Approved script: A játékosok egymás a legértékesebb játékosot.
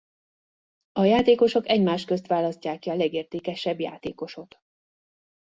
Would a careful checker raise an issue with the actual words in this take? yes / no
yes